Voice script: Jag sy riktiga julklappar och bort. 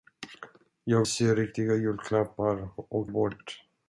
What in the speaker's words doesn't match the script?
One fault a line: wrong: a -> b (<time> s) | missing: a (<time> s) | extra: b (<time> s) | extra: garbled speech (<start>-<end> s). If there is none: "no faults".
no faults